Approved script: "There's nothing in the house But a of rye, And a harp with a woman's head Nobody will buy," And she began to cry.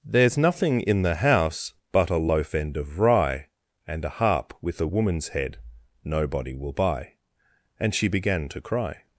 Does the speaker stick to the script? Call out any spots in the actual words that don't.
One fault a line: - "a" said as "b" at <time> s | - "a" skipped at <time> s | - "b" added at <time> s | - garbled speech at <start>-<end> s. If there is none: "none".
- "loaf end" added at 2.2 s